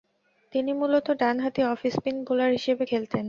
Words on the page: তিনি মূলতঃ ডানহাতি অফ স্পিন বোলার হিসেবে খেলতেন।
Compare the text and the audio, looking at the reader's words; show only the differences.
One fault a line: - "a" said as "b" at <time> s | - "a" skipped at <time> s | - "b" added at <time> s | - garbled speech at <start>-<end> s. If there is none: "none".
none